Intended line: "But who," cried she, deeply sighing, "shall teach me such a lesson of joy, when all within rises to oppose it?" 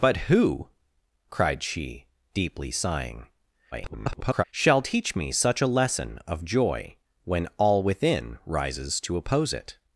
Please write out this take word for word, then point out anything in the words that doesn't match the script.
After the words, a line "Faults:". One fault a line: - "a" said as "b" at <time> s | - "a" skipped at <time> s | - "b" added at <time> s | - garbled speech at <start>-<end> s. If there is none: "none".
"But who," cried she, deeply sighing, [garbled] "shall teach me such a lesson of joy, when all within rises to oppose it?"
Faults:
- garbled speech at 3.7-4.4 s